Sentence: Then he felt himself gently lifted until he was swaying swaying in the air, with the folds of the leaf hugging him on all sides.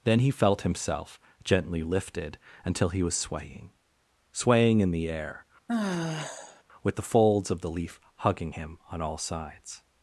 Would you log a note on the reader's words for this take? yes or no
no